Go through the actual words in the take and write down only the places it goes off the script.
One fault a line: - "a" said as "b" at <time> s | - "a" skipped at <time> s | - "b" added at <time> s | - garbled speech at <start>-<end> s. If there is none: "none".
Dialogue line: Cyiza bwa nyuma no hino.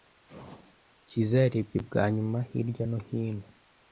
- "yarebye" added at 1.4 s
- "hirya" added at 2.5 s